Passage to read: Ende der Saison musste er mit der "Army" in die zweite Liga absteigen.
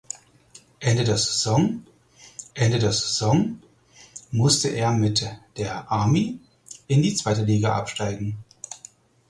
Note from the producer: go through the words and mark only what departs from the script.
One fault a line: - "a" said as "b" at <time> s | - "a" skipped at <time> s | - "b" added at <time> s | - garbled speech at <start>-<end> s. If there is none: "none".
- "ende der Saison" added at 2.5 s